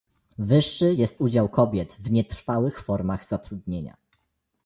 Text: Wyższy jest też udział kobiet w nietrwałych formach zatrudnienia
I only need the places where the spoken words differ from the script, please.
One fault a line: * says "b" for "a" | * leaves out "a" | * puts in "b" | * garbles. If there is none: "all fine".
* leaves out "też"